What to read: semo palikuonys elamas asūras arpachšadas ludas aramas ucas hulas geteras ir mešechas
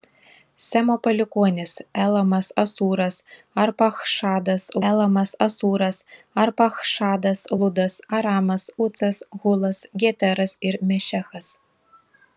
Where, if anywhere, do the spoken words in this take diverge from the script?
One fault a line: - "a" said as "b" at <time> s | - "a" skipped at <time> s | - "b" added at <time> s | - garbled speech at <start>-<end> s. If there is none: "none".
- "elamas asūras arpachšadas" added at 4.9 s